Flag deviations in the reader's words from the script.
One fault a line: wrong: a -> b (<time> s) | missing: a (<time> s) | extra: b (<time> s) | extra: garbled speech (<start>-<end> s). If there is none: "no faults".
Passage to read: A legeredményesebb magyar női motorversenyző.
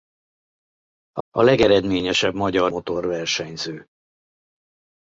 extra: a (1.3 s)
missing: női (2.7 s)